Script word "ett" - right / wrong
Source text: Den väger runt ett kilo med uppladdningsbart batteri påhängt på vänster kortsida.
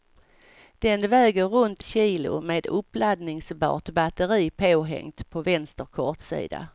wrong